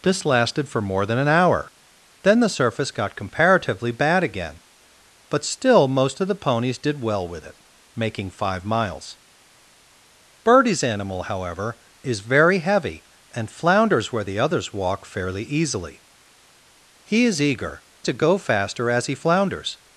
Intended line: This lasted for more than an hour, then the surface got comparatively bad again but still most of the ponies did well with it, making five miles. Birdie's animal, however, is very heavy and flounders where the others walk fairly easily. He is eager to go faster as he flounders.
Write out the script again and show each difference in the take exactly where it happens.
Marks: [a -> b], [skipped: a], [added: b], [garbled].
This lasted for more than an hour, then the surface got comparatively bad again but still most of the ponies did well with it, making five miles. Birdie's animal, however, is very heavy and flounders where the others walk fairly easily. He is eager to go faster as he flounders.